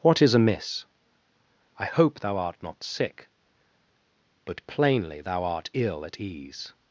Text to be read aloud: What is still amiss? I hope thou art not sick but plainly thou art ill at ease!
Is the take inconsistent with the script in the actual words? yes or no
yes